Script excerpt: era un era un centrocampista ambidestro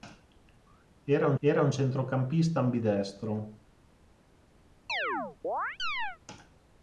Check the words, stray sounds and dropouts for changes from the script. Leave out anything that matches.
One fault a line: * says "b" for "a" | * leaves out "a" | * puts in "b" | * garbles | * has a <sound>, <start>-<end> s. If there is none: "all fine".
* has a chirp, 4.9-6.2 s